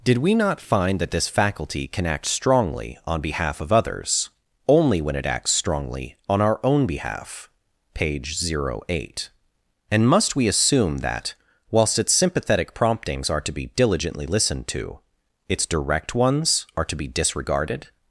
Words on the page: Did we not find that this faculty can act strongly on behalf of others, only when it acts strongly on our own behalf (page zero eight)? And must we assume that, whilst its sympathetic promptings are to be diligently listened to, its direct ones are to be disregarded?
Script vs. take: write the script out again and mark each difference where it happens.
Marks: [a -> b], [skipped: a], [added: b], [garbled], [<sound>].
Did we not find that this faculty can act strongly on behalf of others, only when it acts strongly on our own behalf (page zero eight)? And must we assume that, whilst its sympathetic promptings are to be diligently listened to, its direct ones are to be disregarded?